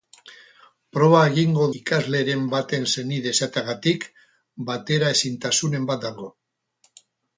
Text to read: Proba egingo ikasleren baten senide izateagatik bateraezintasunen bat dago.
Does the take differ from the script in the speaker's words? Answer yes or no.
no